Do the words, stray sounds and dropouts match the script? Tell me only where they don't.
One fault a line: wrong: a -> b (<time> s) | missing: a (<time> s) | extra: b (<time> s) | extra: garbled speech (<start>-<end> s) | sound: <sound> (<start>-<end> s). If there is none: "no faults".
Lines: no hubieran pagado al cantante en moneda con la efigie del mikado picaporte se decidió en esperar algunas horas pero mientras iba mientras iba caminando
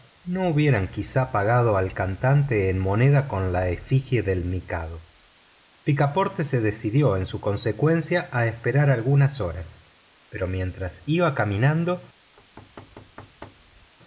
extra: quizá (0.9 s)
extra: su consecuencia a (7.2 s)
missing: mientras iba (11.3 s)
sound: thud (12.4-13.9 s)